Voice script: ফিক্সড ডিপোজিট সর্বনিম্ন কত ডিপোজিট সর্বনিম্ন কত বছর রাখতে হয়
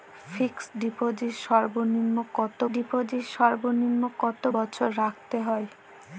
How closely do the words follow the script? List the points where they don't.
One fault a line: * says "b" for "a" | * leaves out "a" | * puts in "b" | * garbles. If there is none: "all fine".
all fine